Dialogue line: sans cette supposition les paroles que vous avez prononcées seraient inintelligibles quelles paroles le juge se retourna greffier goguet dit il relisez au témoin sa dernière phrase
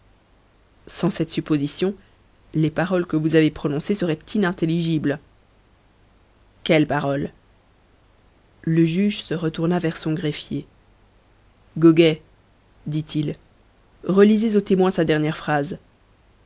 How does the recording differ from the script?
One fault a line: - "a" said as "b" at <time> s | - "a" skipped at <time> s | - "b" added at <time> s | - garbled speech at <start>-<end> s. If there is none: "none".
- "vers son" added at 9.8 s